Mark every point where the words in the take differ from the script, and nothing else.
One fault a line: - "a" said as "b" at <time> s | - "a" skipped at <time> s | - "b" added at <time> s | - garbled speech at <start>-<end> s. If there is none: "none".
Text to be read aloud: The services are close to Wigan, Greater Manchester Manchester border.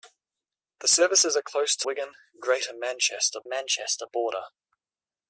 none